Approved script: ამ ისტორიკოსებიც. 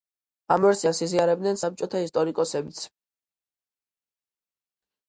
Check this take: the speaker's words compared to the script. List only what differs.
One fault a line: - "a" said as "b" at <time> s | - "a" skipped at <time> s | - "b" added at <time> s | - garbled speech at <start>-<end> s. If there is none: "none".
- "ვერსიას იზიარებდნენ საბჭოთა" added at 0.7 s